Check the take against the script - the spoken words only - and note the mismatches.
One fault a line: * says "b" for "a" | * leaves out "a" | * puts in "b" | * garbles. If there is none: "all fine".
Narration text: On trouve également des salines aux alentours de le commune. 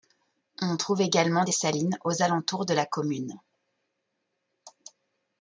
* says "la" for "le"